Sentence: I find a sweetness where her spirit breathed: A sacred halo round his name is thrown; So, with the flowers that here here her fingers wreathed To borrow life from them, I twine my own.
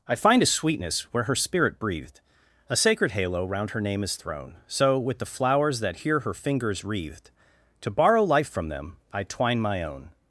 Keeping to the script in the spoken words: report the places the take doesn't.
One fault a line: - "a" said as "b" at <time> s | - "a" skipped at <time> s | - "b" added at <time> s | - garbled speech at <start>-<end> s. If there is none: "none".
- "his" said as "her" at 3.7 s
- "here" skipped at 6.2 s